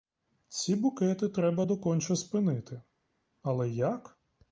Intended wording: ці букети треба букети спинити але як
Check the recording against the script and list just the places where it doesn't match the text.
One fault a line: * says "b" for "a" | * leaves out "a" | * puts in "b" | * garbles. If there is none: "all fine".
* says "доконче" for "букети"